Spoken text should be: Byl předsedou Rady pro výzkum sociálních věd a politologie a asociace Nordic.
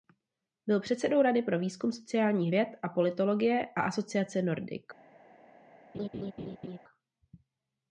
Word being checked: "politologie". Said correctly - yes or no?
yes